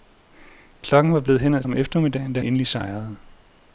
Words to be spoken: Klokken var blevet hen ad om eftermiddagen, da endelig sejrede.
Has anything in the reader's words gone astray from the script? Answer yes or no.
no